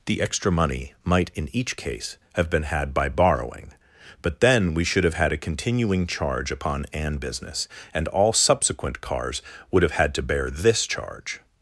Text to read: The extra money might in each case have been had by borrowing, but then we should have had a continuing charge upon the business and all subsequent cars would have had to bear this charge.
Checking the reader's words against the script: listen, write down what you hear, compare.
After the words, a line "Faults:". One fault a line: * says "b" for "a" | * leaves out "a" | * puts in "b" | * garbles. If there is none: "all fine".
The extra money might in each case have been had by borrowing, but then we should have had a continuing charge upon an business and all subsequent cars would have had to bear this charge.
Faults:
* says "an" for "the"